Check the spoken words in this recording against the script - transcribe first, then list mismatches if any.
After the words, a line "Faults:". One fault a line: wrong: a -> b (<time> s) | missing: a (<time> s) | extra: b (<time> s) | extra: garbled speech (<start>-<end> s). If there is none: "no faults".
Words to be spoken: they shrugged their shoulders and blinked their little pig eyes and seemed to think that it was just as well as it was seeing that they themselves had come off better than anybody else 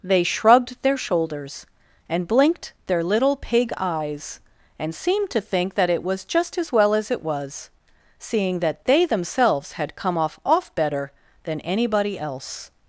they shrugged their shoulders and blinked their little pig eyes and seemed to think that it was just as well as it was seeing that they themselves had come off off better than anybody else
Faults:
extra: off (10.4 s)